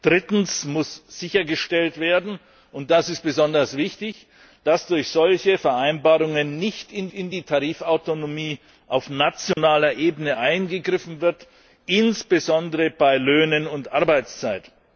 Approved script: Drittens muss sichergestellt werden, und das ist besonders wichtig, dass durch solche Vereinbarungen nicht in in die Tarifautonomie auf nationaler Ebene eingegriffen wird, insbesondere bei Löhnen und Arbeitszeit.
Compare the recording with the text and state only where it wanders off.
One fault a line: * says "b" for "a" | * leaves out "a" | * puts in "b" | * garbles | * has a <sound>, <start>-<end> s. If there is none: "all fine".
* has a dropout, 9.5-9.6 s